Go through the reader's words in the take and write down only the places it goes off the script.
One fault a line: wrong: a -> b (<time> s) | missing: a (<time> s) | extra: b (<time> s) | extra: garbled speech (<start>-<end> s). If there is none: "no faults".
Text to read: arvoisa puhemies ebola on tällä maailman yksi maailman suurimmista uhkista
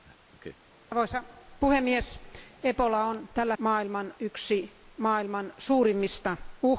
no faults